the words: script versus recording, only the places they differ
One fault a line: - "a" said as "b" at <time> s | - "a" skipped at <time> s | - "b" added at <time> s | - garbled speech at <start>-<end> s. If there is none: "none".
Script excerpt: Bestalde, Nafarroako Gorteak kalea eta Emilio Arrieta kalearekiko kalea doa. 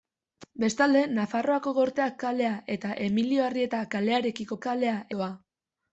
none